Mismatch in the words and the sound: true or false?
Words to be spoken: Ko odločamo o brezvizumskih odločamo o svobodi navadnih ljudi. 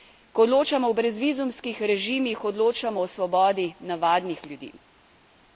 true